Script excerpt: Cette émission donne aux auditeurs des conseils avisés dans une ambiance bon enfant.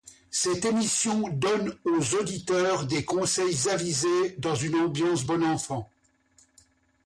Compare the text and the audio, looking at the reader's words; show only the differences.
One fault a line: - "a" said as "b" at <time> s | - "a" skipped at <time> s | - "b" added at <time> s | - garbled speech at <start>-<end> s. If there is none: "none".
none